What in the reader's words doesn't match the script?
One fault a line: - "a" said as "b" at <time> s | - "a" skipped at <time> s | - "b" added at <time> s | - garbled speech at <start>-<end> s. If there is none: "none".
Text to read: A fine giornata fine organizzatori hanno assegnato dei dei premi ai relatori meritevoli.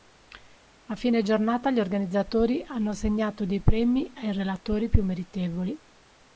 - "fine" said as "gli" at 1.7 s
- "dei" skipped at 3.6 s
- "più" added at 4.9 s